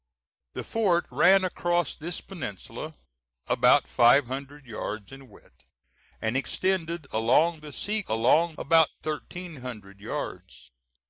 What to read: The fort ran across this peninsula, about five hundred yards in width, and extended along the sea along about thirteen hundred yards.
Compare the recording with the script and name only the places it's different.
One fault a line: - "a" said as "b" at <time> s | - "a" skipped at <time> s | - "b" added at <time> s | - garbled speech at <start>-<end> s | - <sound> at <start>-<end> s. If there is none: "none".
none